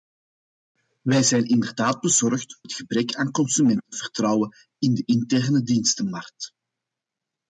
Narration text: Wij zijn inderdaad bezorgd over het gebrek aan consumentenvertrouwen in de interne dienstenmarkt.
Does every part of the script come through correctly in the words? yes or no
no